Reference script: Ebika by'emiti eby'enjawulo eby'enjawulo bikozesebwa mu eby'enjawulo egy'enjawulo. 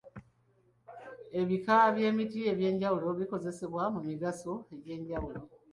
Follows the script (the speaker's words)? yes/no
no